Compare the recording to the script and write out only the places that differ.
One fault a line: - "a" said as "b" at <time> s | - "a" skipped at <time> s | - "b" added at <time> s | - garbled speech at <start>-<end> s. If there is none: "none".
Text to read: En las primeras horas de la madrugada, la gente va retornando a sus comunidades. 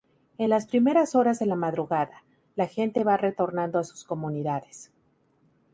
none